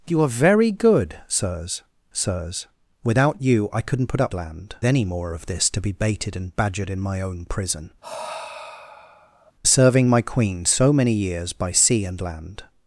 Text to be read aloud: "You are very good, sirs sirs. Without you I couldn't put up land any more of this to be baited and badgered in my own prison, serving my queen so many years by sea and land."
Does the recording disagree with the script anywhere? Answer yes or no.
no